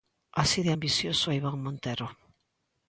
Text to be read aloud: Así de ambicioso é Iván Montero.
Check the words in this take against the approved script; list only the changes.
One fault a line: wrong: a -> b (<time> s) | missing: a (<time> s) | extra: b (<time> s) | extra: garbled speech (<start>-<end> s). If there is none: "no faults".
no faults